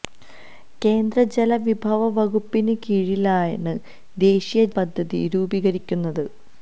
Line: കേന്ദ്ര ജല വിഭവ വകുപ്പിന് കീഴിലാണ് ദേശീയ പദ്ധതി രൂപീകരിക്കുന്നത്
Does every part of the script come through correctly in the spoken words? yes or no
yes